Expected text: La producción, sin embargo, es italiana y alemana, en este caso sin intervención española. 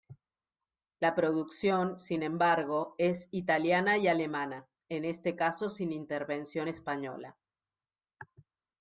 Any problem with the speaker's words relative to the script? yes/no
no